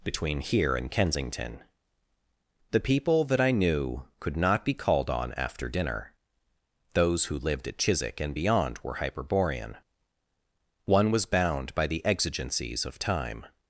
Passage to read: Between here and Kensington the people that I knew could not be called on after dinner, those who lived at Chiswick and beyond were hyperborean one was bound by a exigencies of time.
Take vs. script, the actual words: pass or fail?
fail